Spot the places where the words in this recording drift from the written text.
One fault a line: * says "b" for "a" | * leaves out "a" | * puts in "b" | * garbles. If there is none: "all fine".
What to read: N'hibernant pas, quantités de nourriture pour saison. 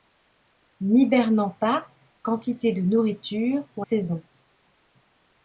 all fine